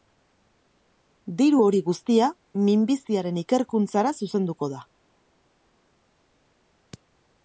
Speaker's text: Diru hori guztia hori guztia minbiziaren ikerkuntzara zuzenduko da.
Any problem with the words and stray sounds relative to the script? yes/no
yes